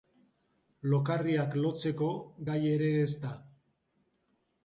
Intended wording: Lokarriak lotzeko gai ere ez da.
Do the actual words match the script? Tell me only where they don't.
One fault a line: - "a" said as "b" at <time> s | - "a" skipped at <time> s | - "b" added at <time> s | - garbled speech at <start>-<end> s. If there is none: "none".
none